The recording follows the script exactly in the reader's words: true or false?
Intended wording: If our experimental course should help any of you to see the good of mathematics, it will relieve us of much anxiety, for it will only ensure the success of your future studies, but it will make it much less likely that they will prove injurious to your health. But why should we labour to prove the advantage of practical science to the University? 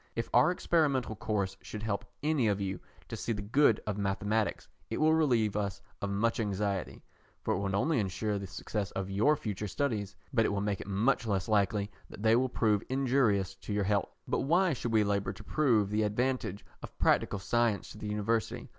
true